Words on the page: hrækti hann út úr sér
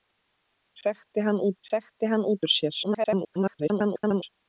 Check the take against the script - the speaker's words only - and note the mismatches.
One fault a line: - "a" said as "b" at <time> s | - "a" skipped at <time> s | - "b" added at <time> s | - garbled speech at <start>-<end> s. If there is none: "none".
- "hrækti hann út" added at 1.7 s
- garbled speech at 2.8-4.2 s